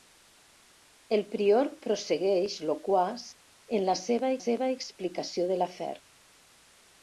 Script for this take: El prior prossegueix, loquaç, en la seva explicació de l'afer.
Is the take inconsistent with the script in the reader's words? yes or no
yes